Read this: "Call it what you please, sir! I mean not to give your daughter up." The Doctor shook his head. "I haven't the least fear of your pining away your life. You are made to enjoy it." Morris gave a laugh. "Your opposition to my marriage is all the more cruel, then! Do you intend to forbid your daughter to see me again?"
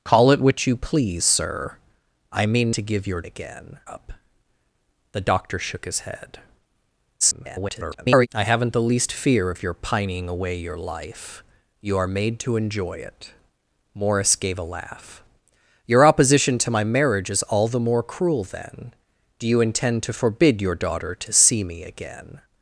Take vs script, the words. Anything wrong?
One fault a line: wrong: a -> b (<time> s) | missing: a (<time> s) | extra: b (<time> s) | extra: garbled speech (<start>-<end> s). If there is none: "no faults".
missing: not (2.7 s)
wrong: daughter -> again (3.2 s)
extra: garbled speech (7.2-8.3 s)